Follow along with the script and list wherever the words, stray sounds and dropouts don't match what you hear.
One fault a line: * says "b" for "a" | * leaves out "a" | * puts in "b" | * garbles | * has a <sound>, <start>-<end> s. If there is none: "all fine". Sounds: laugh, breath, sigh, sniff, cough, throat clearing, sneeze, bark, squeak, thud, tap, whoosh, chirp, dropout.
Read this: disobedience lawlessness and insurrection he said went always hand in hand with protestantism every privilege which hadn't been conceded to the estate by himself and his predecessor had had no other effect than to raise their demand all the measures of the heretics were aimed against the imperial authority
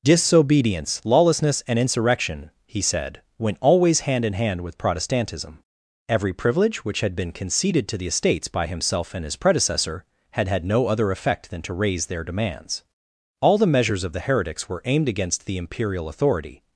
* says "had" for "hadn't"
* says "estates" for "estate"
* says "demands" for "demand"